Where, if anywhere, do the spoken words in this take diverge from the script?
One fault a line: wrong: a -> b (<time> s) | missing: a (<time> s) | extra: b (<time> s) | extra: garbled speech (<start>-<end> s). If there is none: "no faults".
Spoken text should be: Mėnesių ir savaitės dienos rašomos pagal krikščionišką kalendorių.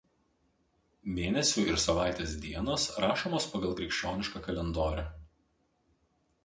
no faults